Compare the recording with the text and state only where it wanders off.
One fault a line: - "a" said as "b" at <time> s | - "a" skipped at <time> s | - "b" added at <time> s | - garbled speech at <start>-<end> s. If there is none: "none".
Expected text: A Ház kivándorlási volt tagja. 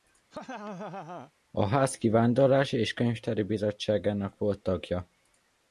- "és könyvtári bizottságának" added at 2.8 s